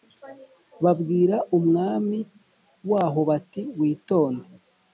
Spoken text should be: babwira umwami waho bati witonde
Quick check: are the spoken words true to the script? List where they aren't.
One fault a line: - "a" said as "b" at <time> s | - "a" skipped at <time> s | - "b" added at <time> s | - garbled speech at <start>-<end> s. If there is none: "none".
none